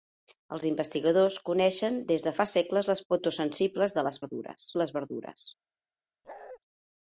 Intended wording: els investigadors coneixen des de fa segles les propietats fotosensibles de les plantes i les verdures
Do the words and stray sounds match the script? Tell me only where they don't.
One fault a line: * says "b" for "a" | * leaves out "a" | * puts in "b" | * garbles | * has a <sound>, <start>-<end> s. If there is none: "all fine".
* leaves out "propietats"
* says "verdures" for "plantes"
* has a bark, 6.2-6.6 s